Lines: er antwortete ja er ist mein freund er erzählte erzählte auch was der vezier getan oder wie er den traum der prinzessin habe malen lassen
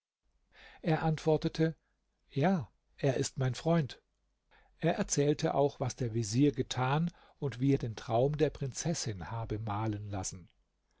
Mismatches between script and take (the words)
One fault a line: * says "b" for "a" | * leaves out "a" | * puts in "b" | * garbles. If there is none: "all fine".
* leaves out "erzählte"
* says "und" for "oder"